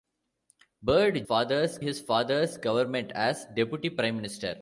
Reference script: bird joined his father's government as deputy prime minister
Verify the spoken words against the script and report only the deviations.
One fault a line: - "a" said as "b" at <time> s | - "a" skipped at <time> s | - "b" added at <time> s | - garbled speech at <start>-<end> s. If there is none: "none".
- "joined" said as "father's" at 1.2 s